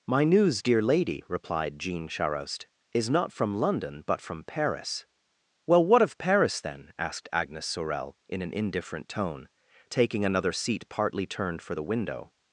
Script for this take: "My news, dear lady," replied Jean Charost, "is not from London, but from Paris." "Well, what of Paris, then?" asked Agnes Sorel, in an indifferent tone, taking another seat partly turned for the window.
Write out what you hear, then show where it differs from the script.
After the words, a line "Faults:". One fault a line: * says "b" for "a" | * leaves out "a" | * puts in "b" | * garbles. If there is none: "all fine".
"My news, dear lady," replied Jean Charost, "is not from London, but from Paris." "Well, what of Paris, then?" asked Agnes Sorel, in an indifferent tone, taking another seat partly turned for the window.
Faults:
all fine